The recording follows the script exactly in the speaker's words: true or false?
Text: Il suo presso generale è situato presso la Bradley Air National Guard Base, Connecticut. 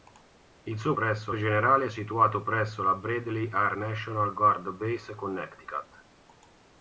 true